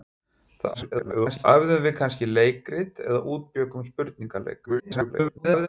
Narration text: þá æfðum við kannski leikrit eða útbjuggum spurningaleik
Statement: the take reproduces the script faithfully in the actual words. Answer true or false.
false